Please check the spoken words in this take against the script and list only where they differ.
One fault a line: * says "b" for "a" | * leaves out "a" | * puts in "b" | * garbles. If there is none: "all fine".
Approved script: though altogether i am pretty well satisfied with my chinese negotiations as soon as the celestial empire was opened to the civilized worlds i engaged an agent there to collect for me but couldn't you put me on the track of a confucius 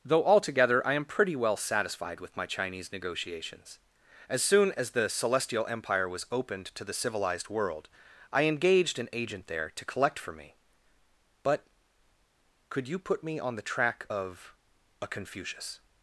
* says "world" for "worlds"
* says "could" for "couldn't"